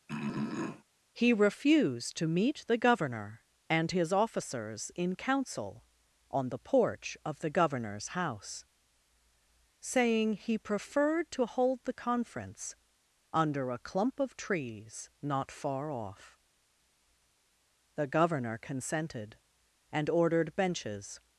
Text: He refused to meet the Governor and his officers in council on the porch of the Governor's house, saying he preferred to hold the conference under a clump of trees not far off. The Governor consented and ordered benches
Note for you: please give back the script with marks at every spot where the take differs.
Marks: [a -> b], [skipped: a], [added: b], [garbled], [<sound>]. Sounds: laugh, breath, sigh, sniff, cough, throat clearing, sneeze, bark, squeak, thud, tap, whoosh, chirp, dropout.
[throat clearing] He refused to meet the Governor and his officers in council on the porch of the Governor's house, saying he preferred to hold the conference under a clump of trees not far off. The Governor consented and ordered benches